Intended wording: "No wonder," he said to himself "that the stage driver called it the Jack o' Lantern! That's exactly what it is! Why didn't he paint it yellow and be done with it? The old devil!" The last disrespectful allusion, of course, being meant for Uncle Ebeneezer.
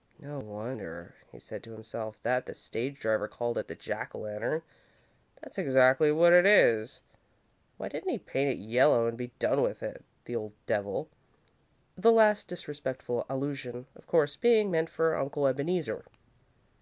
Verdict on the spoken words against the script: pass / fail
pass